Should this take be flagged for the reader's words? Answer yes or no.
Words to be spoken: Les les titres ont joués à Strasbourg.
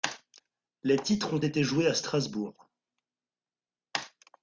yes